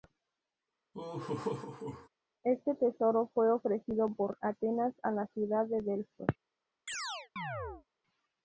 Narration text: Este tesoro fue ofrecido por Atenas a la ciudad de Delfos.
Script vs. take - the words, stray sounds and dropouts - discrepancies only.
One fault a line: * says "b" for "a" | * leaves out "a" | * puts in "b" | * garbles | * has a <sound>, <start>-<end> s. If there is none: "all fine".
* has a laugh, 0.9-2.1 s
* has a chirp, 6.9-7.9 s